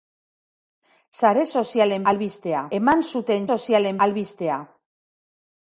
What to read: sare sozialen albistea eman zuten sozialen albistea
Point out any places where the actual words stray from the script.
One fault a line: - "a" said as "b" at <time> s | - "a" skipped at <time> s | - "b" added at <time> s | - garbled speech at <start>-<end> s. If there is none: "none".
none